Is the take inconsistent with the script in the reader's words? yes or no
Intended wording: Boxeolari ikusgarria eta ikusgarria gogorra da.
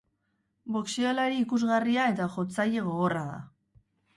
yes